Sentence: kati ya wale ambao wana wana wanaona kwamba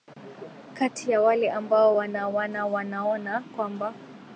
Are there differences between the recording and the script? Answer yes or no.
no